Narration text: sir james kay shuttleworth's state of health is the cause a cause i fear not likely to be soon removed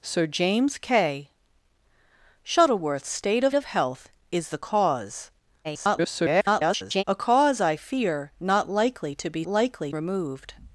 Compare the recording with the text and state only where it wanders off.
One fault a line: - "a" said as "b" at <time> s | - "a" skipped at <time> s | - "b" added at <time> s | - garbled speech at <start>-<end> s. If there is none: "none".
- "of" added at 3.5 s
- garbled speech at 5.6-7.0 s
- "soon" said as "likely" at 9.5 s